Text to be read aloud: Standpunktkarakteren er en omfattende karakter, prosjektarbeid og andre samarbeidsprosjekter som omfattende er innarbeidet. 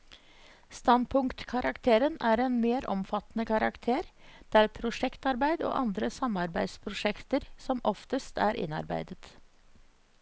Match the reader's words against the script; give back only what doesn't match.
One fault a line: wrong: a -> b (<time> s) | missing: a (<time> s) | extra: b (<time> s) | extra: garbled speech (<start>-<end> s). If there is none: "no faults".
extra: mer (2.6 s)
extra: der (4.6 s)
wrong: omfattende -> oftest (7.9 s)